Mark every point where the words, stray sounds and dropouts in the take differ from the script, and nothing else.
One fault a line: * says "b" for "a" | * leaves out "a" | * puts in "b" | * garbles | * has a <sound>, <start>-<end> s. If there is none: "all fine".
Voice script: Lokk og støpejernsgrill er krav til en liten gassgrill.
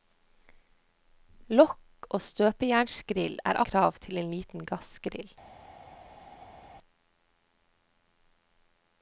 all fine